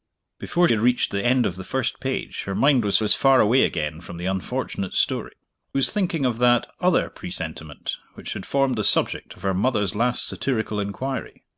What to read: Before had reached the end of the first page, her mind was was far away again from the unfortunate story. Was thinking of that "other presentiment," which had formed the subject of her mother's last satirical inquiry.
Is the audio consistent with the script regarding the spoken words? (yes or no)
yes